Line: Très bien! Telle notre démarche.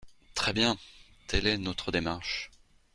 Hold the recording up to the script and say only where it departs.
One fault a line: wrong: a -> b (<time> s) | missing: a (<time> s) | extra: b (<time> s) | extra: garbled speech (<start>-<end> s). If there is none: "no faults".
extra: est (1.5 s)